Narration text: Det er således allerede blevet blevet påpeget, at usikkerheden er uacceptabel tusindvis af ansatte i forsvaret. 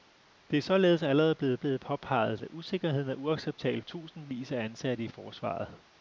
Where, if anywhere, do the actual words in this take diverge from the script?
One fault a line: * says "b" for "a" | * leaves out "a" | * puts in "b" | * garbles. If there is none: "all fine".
all fine